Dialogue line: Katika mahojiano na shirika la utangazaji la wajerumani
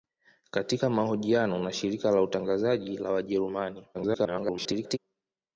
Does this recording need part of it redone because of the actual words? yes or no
yes